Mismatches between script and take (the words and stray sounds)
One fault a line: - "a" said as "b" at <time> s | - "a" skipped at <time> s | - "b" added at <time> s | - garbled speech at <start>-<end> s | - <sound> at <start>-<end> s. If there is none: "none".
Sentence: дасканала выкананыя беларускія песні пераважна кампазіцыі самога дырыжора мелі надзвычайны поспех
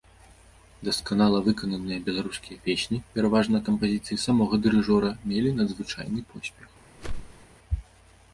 - whoosh at 7.0-7.5 s